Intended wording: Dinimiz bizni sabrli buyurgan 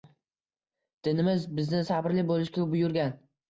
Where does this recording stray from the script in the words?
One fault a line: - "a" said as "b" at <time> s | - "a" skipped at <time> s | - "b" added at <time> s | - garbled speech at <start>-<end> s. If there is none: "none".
- "bo‘lishga" added at 2.3 s